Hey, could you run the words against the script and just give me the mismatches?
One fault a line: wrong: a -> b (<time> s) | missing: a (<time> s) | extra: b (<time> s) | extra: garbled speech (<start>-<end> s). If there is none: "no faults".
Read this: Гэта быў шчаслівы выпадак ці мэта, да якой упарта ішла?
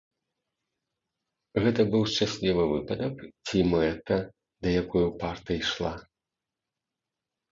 no faults